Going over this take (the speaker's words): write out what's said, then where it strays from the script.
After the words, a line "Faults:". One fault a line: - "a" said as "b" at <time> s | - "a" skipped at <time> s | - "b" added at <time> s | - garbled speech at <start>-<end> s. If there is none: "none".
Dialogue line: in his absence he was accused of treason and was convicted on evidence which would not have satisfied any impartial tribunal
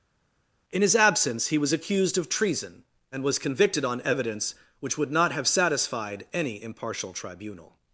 in his absence he was accused of treason and was convicted on evidence which would not have satisfied any impartial tribunal
Faults:
none